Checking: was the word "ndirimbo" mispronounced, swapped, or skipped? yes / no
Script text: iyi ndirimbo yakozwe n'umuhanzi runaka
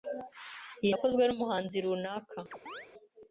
yes